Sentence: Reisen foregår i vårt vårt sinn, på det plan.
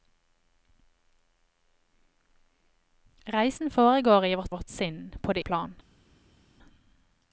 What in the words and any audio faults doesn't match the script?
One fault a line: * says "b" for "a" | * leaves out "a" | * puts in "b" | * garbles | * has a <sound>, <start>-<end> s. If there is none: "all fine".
all fine